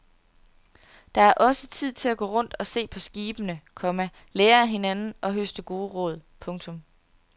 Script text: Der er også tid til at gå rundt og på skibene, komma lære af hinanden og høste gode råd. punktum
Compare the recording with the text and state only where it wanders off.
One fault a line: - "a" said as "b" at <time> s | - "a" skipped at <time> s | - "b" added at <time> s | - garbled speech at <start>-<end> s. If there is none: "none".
- "se" added at 2.7 s